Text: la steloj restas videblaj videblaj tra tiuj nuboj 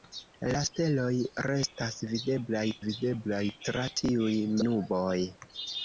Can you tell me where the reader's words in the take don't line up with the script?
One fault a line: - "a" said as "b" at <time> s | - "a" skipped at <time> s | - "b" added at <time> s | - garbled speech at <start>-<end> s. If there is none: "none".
none